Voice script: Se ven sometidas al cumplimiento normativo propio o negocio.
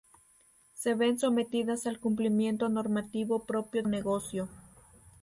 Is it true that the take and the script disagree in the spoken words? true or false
false